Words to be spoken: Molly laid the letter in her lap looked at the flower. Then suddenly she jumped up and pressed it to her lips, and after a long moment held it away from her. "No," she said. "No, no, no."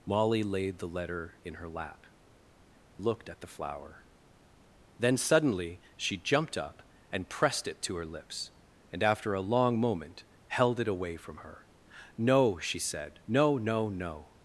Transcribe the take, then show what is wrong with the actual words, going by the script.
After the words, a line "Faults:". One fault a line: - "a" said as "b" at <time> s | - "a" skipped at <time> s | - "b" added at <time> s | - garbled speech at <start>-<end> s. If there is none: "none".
Molly laid the letter in her lap looked at the flower. Then suddenly she jumped up and pressed it to her lips, and after a long moment held it away from her. "No," she said. "No, no, no."
Faults:
none